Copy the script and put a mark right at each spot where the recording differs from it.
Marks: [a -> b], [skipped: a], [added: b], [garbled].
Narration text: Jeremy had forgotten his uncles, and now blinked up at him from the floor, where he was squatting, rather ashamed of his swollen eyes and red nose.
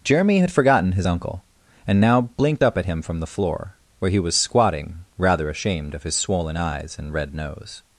Jeremy had forgotten his [uncles, -> uncle] and now blinked up at him from the floor, where he was squatting, rather ashamed of his swollen eyes and red nose.